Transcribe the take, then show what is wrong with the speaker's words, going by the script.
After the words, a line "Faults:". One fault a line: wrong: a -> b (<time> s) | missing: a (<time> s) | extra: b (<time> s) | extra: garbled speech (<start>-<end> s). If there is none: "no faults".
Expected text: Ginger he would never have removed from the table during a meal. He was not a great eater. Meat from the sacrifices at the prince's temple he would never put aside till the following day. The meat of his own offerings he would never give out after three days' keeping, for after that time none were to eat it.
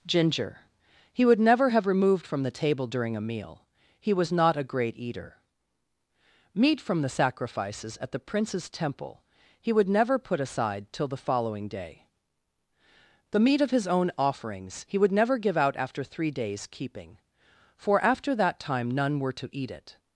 Ginger he would never have removed from the table during a meal. He was not a great eater. Meat from the sacrifices at the prince's temple he would never put aside till the following day. The meat of his own offerings he would never give out after three days' keeping, for after that time none were to eat it.
Faults:
no faults